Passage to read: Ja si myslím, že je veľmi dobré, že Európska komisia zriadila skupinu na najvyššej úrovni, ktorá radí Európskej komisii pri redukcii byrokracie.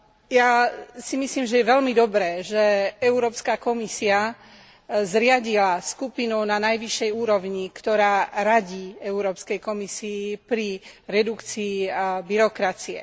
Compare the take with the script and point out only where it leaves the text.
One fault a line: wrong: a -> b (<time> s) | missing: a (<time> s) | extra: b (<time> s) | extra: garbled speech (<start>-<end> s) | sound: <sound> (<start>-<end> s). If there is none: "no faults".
no faults